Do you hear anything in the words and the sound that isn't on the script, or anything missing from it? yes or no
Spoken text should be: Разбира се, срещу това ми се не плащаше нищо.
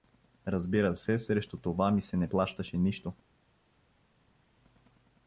no